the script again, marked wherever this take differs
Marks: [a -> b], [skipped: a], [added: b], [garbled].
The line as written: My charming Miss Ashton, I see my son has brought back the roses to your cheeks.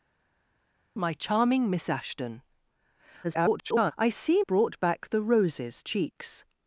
My charming Miss Ashton, [garbled] I see [skipped: my son has] brought back the roses [skipped: to your] cheeks.